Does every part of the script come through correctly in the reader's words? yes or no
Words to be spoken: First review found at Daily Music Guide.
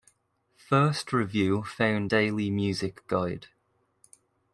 no